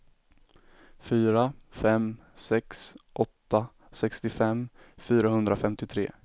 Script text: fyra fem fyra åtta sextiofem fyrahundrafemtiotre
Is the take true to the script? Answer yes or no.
no